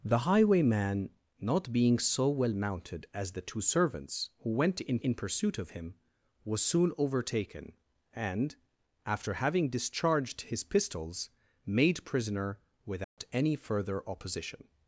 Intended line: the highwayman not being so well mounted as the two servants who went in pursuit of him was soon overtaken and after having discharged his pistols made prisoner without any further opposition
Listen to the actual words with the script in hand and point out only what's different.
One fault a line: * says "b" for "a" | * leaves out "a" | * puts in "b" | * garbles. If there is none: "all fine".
* puts in "in"